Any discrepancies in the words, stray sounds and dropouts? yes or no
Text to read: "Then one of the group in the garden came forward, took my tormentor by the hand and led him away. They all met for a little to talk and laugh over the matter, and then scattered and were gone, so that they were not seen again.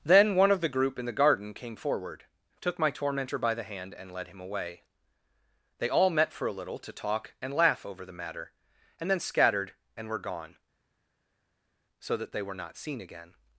no